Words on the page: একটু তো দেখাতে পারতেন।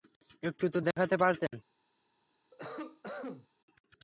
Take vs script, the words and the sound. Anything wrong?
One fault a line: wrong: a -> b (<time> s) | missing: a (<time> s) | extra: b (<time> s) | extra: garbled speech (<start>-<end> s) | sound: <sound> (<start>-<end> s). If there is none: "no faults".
sound: cough (2.5-3.5 s)